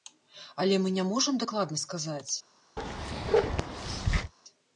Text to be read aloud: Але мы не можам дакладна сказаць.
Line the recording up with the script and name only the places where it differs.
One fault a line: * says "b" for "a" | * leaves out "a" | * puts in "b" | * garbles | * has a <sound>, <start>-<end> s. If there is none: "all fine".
* has a bark, 2.8-4.3 s